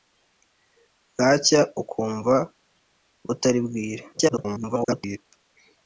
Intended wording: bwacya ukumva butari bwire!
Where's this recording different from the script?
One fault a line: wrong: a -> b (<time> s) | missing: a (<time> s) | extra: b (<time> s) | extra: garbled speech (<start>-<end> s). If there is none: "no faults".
extra: garbled speech (4.1-5.2 s)